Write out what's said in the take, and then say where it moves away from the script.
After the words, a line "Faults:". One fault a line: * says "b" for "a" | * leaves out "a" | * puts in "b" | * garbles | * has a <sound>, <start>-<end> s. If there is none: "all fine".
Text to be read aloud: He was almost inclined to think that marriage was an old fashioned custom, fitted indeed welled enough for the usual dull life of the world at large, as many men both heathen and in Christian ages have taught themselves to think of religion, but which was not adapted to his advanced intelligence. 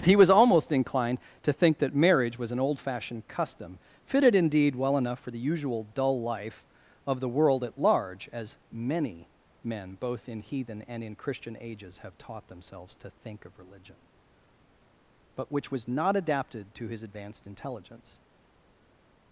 He was almost inclined to think that marriage was an old fashioned custom, fitted indeed well enough for the usual dull life of the world at large, as many men both in heathen and in Christian ages have taught themselves to think of religion, but which was not adapted to his advanced intelligence.
Faults:
* says "well" for "welled"
* puts in "in"